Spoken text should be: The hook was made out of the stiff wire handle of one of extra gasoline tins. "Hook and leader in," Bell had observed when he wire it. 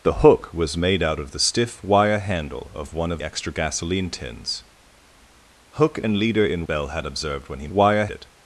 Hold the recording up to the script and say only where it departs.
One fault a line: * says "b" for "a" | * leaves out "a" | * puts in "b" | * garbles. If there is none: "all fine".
all fine